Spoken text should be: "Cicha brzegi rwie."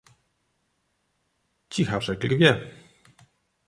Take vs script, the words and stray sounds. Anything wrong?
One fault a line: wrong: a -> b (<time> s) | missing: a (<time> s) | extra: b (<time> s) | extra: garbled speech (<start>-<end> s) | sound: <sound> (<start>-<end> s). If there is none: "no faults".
no faults